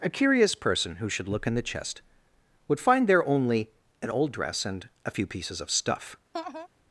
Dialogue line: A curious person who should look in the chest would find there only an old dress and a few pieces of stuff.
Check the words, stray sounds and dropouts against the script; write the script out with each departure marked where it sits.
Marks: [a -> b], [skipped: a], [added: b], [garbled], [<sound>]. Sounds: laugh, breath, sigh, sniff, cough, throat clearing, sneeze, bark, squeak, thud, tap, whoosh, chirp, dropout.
A curious person who should look in the chest would find there only an old dress and a few pieces of stuff. [laugh]